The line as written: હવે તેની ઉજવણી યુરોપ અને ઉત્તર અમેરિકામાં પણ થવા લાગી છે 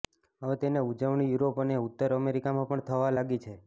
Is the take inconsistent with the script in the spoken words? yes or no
no